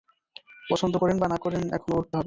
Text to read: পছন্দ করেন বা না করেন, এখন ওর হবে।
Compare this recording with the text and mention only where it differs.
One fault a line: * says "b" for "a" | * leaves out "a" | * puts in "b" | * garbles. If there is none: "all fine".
all fine